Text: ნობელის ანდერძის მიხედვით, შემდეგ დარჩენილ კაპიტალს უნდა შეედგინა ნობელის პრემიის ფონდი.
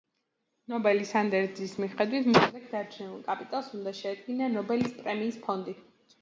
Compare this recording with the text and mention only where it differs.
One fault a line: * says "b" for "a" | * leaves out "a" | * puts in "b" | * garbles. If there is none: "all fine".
all fine